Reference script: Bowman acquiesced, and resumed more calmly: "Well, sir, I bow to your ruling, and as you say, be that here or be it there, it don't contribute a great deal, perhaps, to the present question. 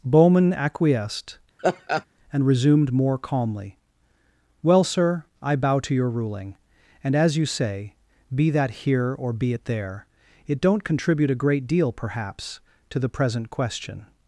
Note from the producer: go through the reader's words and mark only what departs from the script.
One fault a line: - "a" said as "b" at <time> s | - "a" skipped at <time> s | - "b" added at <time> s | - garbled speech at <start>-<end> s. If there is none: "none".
none